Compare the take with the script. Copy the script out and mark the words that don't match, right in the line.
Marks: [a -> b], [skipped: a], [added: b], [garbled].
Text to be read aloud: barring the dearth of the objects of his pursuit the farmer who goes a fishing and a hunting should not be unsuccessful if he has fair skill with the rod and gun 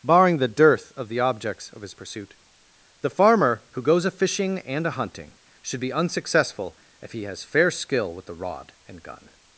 barring the dearth of the objects of his pursuit the farmer who goes a fishing and a hunting should [skipped: not] be unsuccessful if he has fair skill with the rod and gun